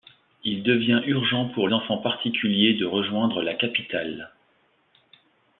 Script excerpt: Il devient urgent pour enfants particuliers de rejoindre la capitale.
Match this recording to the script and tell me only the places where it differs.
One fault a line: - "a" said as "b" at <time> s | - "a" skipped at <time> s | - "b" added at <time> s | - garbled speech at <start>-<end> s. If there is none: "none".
none